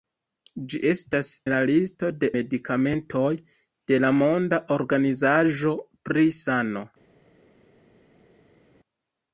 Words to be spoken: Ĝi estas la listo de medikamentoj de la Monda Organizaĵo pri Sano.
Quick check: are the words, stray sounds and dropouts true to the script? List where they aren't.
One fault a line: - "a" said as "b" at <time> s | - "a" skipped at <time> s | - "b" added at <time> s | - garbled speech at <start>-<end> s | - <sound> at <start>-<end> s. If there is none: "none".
none